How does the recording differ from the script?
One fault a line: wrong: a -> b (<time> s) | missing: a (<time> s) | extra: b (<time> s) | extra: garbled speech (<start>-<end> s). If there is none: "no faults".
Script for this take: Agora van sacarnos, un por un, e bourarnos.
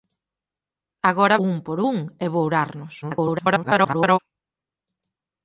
missing: van sacarnos (1.4 s)
extra: garbled speech (3.0-4.2 s)